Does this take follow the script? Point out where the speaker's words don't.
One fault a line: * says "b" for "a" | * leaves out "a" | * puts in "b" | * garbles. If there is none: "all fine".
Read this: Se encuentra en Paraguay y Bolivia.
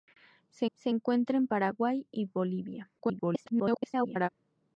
* puts in "se"
* garbles